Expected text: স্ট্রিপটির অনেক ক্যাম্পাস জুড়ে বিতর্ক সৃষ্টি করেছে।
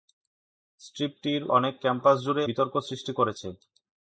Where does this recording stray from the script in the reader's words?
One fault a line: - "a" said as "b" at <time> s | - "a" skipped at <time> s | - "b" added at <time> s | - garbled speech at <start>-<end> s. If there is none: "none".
none